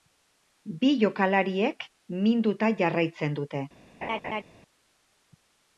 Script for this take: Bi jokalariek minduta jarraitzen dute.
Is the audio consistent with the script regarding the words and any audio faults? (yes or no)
no